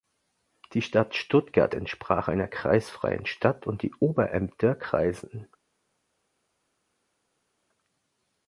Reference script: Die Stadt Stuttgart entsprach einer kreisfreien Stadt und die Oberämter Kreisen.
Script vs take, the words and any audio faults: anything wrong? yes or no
no